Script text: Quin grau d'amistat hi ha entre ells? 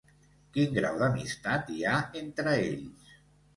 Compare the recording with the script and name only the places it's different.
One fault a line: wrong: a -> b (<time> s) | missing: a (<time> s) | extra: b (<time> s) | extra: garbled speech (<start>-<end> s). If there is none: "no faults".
no faults